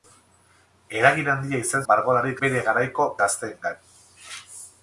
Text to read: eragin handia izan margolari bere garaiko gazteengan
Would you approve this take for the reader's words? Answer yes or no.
yes